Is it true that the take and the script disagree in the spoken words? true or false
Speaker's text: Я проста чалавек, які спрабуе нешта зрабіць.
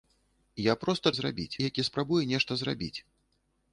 true